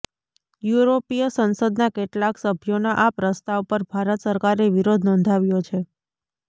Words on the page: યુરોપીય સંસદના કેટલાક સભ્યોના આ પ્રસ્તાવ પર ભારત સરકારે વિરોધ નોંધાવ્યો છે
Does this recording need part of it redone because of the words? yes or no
no